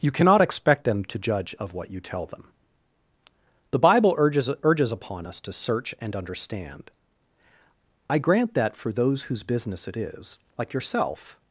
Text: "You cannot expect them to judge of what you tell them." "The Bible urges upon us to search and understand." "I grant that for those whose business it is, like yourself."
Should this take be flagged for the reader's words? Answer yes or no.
yes